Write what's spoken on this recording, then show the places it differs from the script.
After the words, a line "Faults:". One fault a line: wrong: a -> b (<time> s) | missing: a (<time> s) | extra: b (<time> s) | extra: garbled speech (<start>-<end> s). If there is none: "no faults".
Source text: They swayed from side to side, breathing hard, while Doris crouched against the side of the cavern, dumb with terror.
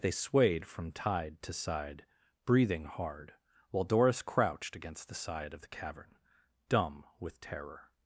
They swayed from tide to side, breathing hard, while Doris crouched against the side of the cavern, dumb with terror.
Faults:
wrong: side -> tide (0.9 s)